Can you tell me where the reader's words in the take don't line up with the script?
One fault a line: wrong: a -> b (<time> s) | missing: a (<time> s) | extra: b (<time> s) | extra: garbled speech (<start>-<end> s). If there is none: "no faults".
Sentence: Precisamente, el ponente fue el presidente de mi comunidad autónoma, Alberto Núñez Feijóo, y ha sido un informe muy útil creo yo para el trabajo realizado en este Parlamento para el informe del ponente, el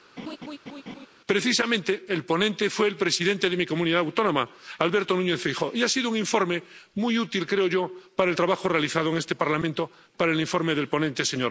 no faults